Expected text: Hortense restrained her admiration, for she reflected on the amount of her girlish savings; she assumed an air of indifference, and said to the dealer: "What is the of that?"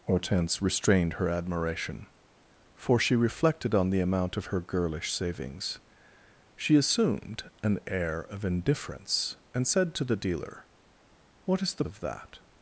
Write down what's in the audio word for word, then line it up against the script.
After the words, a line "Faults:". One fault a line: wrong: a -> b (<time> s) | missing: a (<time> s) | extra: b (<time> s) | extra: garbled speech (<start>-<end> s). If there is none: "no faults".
Hortense restrained her admiration, for she reflected on the amount of her girlish savings; she assumed an air of indifference, and said to the dealer: "What is the of that?"
Faults:
no faults